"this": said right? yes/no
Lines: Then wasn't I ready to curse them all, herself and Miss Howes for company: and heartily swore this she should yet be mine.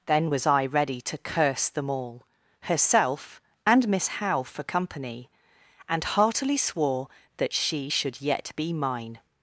no